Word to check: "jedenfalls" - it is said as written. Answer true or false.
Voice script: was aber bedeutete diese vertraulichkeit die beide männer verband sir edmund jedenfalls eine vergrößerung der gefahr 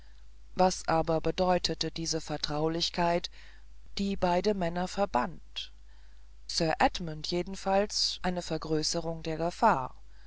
true